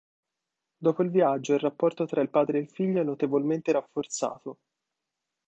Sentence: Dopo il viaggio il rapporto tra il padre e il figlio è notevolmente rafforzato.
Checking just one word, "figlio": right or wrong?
right